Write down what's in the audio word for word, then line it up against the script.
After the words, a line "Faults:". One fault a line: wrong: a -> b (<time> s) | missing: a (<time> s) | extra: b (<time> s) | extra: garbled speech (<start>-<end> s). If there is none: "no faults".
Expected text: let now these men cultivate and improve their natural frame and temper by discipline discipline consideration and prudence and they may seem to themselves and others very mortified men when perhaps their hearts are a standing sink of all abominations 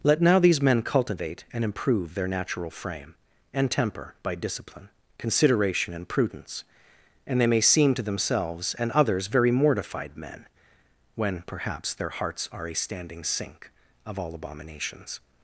let now these men cultivate and improve their natural frame and temper by discipline consideration and prudence and they may seem to themselves and others very mortified men when perhaps their hearts are a standing sink of all abominations
Faults:
missing: discipline (4.9 s)